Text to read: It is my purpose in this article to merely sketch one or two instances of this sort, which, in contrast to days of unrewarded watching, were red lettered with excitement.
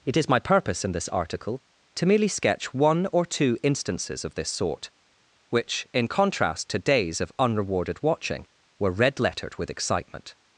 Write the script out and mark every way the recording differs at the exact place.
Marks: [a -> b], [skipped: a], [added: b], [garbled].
It is my purpose in this article to merely sketch one or two instances of this sort, which, in contrast to days of unrewarded watching, were red lettered with excitement.